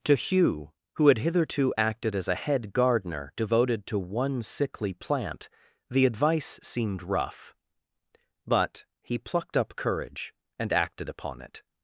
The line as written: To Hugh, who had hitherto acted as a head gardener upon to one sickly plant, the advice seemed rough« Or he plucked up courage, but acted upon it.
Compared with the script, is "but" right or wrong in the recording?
wrong